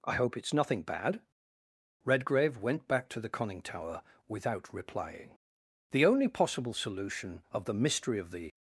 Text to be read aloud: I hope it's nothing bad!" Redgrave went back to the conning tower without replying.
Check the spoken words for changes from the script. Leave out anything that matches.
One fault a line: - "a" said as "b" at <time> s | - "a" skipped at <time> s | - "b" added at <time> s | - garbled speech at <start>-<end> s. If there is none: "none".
- "The only possible solution of the mystery of the" added at 5.9 s